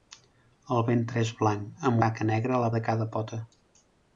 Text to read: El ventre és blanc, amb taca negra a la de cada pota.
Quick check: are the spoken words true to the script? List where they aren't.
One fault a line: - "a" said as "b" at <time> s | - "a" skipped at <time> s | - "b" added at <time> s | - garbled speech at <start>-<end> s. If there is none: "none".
none